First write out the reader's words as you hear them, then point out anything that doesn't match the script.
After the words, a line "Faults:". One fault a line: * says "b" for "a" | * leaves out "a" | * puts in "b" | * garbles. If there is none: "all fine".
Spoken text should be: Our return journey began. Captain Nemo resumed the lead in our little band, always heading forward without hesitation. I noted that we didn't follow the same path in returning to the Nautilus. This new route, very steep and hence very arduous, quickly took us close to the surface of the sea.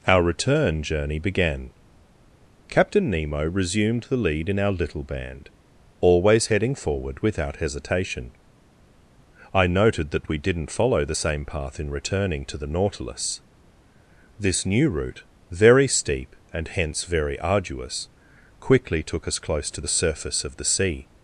Our return journey began. Captain Nemo resumed the lead in our little band, always heading forward without hesitation. I noted that we didn't follow the same path in returning to the Nautilus. This new route, very steep and hence very arduous, quickly took us close to the surface of the sea.
Faults:
all fine